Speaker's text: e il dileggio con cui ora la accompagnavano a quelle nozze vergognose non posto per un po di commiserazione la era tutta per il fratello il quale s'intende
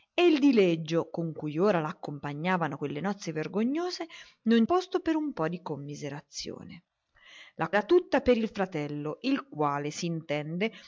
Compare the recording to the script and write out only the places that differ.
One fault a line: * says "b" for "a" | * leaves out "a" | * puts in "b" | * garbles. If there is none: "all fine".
all fine